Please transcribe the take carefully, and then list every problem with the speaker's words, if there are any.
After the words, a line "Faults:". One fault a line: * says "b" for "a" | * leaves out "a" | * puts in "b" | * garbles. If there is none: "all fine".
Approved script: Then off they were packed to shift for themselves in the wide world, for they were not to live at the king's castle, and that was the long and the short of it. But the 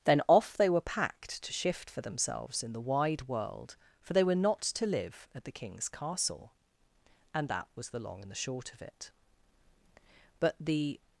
Then off they were packed to shift for themselves in the wide world, for they were not to live at the king's castle, and that was the long and the short of it. But the
Faults:
all fine